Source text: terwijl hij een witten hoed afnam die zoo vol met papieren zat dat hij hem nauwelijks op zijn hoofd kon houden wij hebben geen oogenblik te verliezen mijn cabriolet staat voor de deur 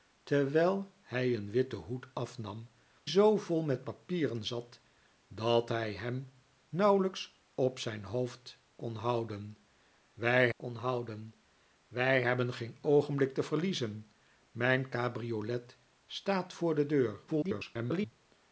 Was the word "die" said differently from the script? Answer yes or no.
yes